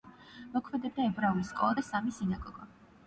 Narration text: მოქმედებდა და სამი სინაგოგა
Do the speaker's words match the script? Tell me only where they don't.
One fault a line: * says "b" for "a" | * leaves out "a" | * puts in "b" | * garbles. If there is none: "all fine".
* puts in "ებრაული სკოლა"